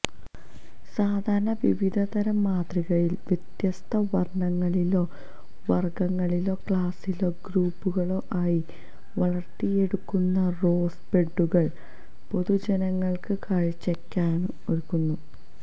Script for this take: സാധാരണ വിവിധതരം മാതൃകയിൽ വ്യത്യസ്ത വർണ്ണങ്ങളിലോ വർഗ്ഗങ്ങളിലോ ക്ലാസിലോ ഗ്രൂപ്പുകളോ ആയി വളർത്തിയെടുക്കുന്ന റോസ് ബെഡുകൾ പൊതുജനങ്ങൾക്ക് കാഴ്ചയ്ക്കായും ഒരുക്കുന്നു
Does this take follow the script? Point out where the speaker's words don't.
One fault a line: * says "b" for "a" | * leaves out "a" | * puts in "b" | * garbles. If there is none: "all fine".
all fine